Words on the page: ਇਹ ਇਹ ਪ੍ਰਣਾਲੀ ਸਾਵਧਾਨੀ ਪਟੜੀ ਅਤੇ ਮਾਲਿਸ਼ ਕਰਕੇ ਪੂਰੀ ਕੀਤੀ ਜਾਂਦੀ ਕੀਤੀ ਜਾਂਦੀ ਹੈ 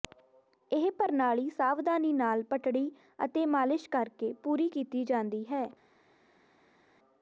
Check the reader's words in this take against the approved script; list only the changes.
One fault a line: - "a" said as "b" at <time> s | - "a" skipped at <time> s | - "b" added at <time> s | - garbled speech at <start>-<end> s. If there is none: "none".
- "ਇਹ" skipped at 0.9 s
- "ਨਾਲ" added at 2.1 s
- "ਕੀਤੀ ਜਾਂਦੀ" skipped at 5.5 s